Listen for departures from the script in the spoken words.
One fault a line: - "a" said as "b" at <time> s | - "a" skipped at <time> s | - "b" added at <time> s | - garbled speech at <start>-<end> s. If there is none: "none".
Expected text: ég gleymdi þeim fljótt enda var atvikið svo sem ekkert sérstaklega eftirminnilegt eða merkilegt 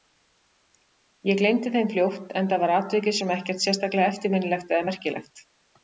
- "svo" skipped at 3.2 s